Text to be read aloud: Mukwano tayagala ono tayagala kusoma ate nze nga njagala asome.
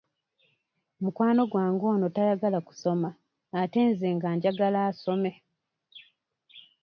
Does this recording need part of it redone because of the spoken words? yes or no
yes